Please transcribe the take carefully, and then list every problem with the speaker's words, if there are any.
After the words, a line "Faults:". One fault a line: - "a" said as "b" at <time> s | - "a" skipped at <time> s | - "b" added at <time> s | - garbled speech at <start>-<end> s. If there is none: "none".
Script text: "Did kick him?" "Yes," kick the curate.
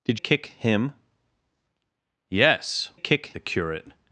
"Did kick him?" "Yes," kick the curate.
Faults:
none